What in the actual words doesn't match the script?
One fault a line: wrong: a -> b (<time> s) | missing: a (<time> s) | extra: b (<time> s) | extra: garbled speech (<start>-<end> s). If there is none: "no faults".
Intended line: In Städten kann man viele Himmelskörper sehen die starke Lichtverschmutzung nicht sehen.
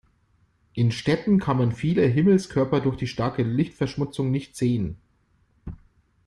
wrong: sehen -> durch (2.8 s)